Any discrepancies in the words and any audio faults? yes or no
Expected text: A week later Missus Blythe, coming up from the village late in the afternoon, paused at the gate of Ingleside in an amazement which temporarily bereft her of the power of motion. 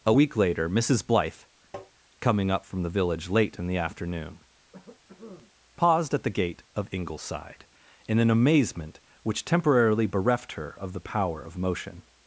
yes